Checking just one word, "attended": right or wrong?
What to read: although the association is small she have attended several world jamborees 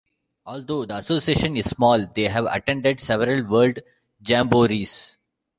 right